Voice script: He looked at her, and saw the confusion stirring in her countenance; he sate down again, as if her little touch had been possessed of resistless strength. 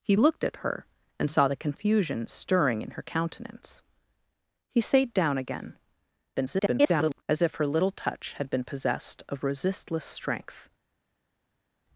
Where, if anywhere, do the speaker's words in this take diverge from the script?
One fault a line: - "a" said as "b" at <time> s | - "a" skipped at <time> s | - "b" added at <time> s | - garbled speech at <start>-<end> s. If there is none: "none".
- garbled speech at 6.3-7.2 s